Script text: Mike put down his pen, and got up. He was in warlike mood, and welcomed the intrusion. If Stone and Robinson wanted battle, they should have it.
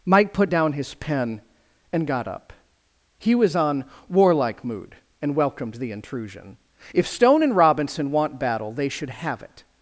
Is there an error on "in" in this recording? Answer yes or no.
yes